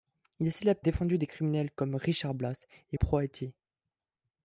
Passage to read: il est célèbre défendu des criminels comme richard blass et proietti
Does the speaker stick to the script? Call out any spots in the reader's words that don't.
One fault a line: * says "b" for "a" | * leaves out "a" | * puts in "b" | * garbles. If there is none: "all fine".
all fine